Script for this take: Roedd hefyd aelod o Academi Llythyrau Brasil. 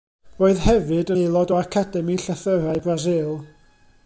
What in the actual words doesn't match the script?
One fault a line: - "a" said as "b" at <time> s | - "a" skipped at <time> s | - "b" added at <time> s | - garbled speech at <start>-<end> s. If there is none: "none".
none